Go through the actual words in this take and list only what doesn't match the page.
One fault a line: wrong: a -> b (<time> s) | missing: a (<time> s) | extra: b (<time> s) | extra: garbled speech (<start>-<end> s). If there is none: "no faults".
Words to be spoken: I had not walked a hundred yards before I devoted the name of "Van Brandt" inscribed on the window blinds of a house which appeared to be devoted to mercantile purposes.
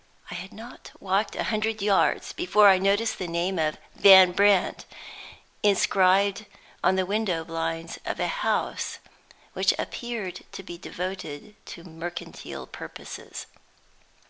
wrong: devoted -> noticed (2.8 s)